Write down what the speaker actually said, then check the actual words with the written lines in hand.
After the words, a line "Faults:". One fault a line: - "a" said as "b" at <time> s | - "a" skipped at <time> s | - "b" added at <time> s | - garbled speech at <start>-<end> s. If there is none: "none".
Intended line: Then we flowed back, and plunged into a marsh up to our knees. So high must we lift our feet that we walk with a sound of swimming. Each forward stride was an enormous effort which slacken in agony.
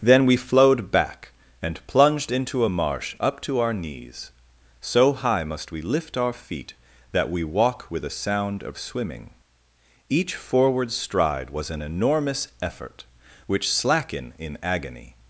Then we flowed back, and plunged into a marsh up to our knees. So high must we lift our feet that we walk with a sound of swimming. Each forward stride was an enormous effort which slacken in agony.
Faults:
none